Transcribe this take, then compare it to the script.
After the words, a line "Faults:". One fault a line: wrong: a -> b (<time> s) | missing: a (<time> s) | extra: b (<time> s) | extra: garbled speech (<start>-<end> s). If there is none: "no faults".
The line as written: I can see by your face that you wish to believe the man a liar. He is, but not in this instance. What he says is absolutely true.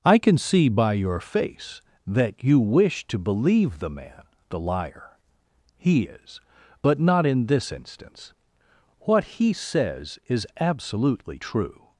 I can see by your face that you wish to believe the man the liar. He is, but not in this instance. What he says is absolutely true.
Faults:
wrong: a -> the (4.5 s)